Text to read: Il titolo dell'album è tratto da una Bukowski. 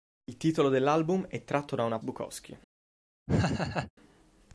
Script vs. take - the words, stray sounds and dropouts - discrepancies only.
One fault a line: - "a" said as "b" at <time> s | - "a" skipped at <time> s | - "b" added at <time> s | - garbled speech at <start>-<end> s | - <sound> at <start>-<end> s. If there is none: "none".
- laugh at 3.3-3.9 s